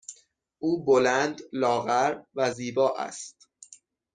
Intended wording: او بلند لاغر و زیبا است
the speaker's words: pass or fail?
pass